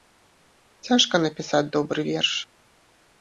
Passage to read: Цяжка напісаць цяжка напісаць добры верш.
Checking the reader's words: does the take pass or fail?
fail